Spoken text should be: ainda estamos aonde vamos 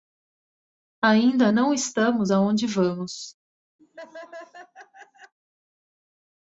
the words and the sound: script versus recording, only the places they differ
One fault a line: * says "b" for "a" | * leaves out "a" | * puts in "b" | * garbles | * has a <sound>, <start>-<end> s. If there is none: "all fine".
* puts in "não"
* has a laugh, 3.8-5.3 s